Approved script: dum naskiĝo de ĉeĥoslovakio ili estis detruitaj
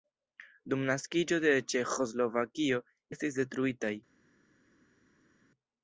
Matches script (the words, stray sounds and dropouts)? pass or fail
fail